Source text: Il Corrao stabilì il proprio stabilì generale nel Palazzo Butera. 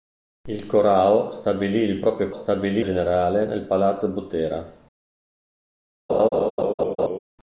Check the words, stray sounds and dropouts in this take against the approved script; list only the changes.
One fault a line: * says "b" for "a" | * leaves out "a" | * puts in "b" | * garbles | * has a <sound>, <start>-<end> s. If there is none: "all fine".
* has a laugh, 6.1-7.2 s